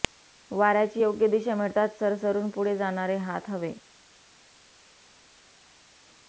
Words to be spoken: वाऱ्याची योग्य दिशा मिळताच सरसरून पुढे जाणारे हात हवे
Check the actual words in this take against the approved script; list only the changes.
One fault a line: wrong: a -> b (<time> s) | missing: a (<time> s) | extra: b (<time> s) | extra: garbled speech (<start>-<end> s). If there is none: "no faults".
no faults